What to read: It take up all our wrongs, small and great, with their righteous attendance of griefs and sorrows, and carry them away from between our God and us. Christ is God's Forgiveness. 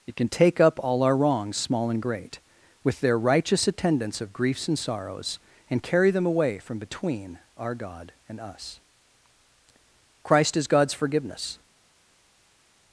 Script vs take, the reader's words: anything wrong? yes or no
yes